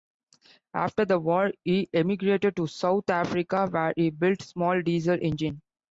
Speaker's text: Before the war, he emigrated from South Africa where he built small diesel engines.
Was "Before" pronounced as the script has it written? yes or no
no